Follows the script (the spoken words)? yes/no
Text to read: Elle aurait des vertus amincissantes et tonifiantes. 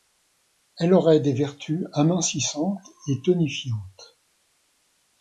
yes